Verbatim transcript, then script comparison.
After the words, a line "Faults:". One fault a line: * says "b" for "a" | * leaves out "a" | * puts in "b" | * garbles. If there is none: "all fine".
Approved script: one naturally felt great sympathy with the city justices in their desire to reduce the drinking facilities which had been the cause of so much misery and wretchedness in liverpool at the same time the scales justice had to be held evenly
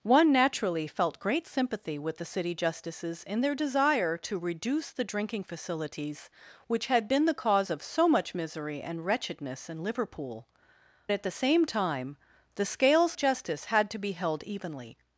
one naturally felt great sympathy with the city justices in their desire to reduce the drinking facilities which had been the cause of so much misery and wretchedness in liverpool at the same time the scales justice had to be held evenly
Faults:
all fine